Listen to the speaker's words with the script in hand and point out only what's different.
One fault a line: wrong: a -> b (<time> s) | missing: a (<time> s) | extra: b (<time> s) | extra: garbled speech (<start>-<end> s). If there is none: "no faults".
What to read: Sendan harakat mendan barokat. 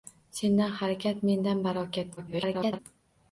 extra: garbled speech (2.2-2.8 s)